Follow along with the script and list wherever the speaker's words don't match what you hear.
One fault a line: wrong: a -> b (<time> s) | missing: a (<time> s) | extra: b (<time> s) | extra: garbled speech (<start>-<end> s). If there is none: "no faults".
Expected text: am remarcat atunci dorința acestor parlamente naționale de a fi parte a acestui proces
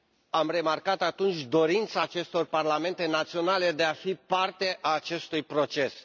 no faults